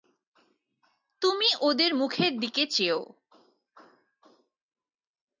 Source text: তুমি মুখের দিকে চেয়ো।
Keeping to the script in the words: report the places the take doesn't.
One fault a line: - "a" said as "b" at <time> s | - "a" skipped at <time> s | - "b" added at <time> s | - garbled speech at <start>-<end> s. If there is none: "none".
- "ওদের" added at 1.6 s